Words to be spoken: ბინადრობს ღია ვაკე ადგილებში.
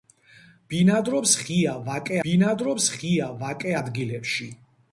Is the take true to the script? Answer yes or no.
no